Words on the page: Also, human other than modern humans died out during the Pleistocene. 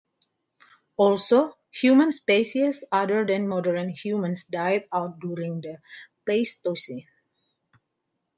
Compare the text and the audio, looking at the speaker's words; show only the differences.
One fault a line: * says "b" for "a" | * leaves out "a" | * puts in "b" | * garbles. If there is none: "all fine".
* puts in "species"